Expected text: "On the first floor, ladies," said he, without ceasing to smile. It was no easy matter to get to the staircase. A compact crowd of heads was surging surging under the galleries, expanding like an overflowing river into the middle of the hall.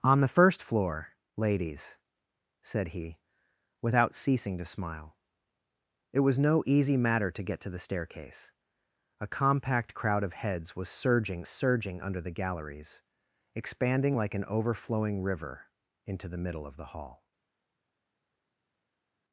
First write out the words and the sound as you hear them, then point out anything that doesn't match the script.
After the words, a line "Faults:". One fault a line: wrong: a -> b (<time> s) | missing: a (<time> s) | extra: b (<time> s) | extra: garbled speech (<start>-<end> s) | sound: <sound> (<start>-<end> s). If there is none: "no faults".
"On the first floor, ladies," said he, without ceasing to smile. It was no easy matter to get to the staircase. A compact crowd of heads was surging surging under the galleries, expanding like an overflowing river into the middle of the hall.
Faults:
no faults